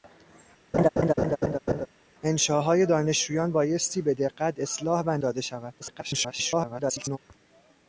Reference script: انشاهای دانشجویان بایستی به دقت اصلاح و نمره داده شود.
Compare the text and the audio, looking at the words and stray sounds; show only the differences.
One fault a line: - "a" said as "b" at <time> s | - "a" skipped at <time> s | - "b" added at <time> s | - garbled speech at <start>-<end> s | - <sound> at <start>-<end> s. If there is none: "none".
- laugh at 0.7-1.9 s
- "نمره" skipped at 5.2 s
- garbled speech at 5.8-7.2 s